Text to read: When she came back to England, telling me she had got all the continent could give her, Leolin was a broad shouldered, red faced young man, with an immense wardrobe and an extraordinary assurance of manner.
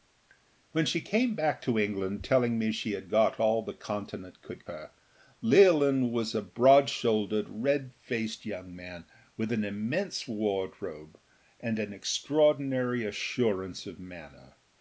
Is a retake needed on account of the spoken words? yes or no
yes